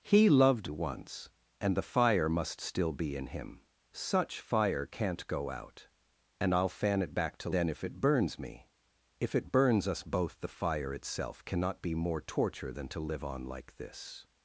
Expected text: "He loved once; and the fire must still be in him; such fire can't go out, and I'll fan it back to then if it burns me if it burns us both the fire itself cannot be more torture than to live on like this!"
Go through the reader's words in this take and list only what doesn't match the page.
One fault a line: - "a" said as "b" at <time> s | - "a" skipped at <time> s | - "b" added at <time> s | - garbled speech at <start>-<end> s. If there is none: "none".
none